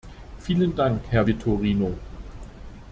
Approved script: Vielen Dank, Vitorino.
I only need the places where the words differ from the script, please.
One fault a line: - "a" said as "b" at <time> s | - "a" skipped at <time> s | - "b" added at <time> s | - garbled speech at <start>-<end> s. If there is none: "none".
- "Herr" added at 1.1 s